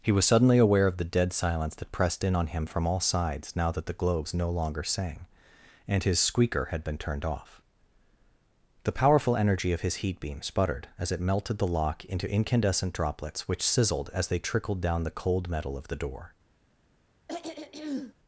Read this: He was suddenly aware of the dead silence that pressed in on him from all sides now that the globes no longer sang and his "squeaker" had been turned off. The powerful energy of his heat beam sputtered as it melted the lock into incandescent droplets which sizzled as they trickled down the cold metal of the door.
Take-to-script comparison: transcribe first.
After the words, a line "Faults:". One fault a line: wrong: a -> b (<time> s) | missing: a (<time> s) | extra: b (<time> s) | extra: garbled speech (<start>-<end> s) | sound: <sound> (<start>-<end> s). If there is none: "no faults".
He was suddenly aware of the dead silence that pressed in on him from all sides now that the globes no longer sang and his "squeaker" had been turned off. The powerful energy of his heat beam sputtered as it melted the lock into incandescent droplets which sizzled as they trickled down the cold metal of the door.
Faults:
sound: throat clearing (17.3-18.1 s)